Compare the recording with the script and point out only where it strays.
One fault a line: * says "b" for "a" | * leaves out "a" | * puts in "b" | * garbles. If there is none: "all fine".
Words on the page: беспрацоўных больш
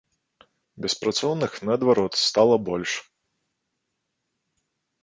* puts in "наадварот стала"